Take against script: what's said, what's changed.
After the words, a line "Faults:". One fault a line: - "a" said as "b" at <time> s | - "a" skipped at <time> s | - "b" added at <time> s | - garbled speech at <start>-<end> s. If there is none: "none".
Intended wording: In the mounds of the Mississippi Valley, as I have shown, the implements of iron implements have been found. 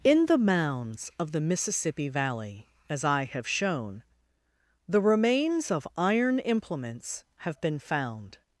In the mounds of the Mississippi Valley, as I have shown, the remains of iron implements have been found.
Faults:
- "implements" said as "remains" at 5.0 s